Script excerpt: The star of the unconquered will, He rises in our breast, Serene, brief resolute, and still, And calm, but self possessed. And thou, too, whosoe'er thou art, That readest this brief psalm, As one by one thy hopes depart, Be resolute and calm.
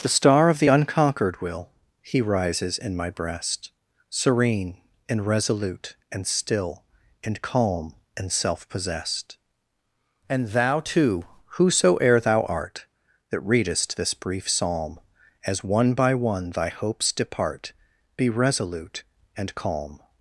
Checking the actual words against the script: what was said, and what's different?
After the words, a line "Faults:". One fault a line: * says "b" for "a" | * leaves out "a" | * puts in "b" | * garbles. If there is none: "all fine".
The star of the unconquered will, He rises in my breast, Serene, and resolute, and still, And calm, and self possessed. And thou, too, whosoe'er thou art, That readest this brief psalm, As one by one thy hopes depart, Be resolute and calm.
Faults:
* says "my" for "our"
* says "and" for "brief"
* says "and" for "but"